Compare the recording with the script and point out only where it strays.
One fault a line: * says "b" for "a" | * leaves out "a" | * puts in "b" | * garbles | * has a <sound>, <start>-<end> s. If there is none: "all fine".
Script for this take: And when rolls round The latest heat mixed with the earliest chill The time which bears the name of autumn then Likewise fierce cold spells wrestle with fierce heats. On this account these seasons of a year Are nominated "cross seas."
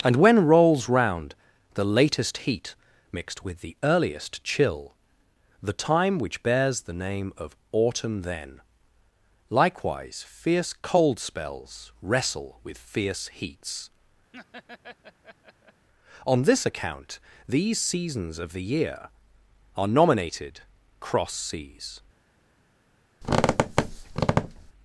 * has a laugh, 14.3-15.9 s
* says "the" for "a"
* has a squeak, 23.2-24.7 s